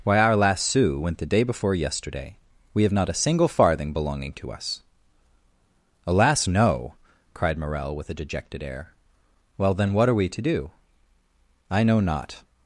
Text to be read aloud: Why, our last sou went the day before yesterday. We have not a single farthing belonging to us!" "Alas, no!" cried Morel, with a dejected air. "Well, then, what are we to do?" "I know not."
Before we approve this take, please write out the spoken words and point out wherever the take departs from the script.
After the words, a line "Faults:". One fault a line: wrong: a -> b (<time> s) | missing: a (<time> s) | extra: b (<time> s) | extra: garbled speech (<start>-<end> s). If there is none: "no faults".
Why, our last sou went the day before yesterday. We have not a single farthing belonging to us!" "Alas, no!" cried Morel, with a dejected air. "Well, then, what are we to do?" "I know not."
Faults:
no faults